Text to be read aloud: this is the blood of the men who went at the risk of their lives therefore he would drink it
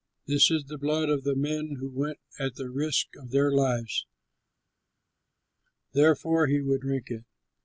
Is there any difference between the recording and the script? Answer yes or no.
no